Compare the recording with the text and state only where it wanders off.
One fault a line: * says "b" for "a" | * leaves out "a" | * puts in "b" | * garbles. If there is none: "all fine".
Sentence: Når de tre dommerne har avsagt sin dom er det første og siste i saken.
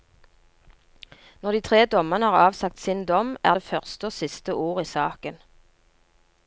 * puts in "ord"